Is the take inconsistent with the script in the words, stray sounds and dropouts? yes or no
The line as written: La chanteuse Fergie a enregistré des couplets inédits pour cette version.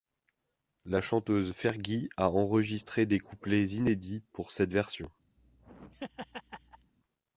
yes